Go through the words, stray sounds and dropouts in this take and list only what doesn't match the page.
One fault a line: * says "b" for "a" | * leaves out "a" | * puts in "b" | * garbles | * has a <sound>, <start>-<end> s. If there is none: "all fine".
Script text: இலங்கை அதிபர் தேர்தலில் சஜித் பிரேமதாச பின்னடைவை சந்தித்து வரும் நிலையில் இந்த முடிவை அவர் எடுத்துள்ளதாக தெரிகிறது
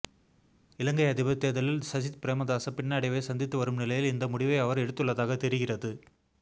all fine